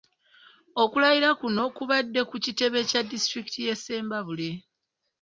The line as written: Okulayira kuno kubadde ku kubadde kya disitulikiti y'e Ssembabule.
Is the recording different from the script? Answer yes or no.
yes